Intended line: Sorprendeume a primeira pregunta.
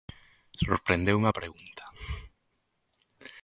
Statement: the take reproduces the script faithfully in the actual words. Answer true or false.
false